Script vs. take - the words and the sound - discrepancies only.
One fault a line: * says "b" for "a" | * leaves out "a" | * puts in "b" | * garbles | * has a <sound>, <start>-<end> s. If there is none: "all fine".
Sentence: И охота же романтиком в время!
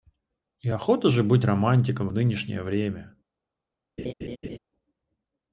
* puts in "быть"
* puts in "нынешнее"
* has a laugh, 4.0-4.6 s